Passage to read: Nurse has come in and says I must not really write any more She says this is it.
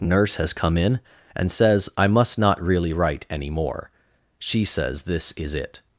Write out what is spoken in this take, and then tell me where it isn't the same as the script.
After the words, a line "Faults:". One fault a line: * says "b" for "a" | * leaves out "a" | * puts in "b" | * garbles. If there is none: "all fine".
Nurse has come in and says I must not really write any more She says this is it.
Faults:
all fine